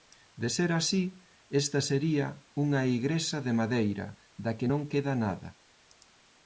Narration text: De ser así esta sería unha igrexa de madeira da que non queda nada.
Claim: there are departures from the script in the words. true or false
false